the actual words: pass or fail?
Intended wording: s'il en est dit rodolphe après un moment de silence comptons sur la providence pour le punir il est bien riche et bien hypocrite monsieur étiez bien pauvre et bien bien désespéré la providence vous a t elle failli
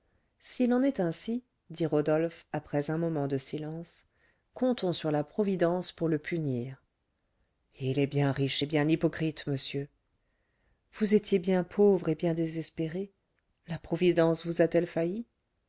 fail